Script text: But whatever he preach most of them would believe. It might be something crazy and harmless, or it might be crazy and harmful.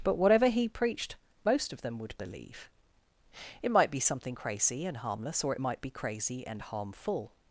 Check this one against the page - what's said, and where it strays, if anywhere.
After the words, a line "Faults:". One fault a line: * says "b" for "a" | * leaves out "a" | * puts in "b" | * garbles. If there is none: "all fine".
But whatever he preached most of them would believe. It might be something crazy and harmless, or it might be crazy and harmful.
Faults:
* says "preached" for "preach"